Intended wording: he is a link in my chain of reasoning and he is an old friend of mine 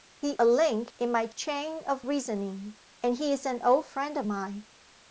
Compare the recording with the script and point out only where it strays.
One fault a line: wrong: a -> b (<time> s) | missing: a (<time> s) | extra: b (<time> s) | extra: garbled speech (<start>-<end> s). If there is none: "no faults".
missing: is (0.3 s)